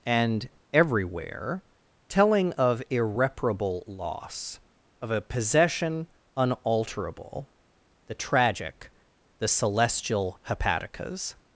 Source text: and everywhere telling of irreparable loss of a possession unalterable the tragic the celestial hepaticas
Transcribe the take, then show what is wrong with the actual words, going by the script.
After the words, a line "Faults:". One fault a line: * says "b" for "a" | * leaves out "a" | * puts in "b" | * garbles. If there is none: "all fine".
and everywhere telling of irreparable loss of a possession unalterable the tragic the celestial hepaticas
Faults:
all fine